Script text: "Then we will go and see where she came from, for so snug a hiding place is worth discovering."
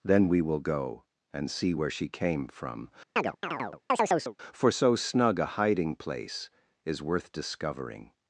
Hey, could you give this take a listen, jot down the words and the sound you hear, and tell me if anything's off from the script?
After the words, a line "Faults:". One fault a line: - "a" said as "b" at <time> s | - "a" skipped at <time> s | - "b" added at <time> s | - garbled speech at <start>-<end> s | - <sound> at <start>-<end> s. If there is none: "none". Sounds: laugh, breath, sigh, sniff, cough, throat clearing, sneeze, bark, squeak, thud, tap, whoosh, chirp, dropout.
"Then we will go and see where she came from, for so snug a hiding place is worth discovering."
Faults:
- chirp at 3.2-4.4 s